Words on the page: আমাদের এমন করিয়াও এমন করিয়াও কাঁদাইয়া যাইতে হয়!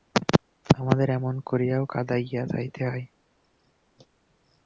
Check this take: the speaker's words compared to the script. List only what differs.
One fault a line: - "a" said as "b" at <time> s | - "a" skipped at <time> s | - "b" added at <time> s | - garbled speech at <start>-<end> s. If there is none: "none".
- "এমন করিয়াও" skipped at 1.8 s